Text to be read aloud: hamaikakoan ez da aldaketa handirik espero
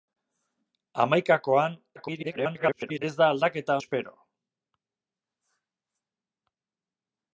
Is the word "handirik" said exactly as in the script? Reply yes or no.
no